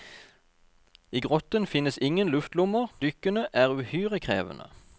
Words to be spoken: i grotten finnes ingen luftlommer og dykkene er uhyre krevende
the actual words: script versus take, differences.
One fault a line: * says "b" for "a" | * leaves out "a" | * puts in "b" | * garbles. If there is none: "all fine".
* leaves out "og"